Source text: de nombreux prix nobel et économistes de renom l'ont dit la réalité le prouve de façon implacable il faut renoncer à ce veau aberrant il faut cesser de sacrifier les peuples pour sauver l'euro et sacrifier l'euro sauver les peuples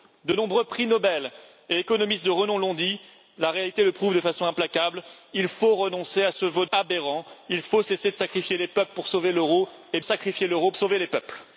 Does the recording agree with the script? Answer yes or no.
yes